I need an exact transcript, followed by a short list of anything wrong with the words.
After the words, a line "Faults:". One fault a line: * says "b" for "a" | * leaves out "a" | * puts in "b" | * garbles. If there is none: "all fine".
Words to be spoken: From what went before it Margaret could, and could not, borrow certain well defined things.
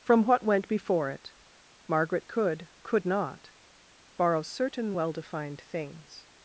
From what went before it Margaret could, could not, borrow certain well defined things.
Faults:
* leaves out "and"